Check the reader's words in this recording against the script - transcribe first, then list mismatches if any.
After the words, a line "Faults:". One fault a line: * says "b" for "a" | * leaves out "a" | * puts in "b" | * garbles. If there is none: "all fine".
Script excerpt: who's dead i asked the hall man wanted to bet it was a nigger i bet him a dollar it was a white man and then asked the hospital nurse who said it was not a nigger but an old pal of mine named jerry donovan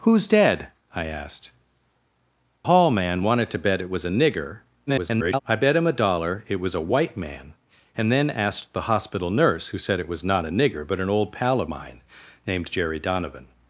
who's dead i asked hall man wanted to bet it was a nigger [garbled] i bet him a dollar it was a white man and then asked the hospital nurse who said it was not a nigger but an old pal of mine named jerry donovan
Faults:
* leaves out "the"
* garbles